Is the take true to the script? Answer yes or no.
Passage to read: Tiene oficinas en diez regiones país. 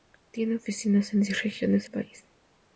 yes